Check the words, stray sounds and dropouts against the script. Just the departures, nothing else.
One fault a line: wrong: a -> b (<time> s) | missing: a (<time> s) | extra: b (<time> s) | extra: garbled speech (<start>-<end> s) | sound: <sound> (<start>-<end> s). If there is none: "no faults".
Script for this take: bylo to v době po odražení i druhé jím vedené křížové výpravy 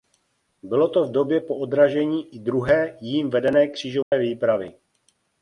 sound: dropout (4.0-4.1 s)